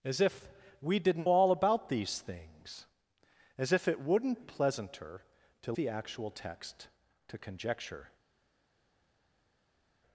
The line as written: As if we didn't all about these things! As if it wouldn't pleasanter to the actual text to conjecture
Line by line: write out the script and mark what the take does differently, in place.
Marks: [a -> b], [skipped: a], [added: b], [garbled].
As if we didn't all about these things! As if it wouldn't pleasanter to the actual text to conjecture